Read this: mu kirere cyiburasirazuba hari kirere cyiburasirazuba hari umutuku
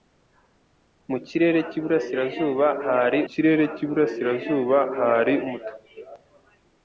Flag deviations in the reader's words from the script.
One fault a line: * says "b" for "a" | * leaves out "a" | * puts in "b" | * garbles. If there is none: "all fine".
all fine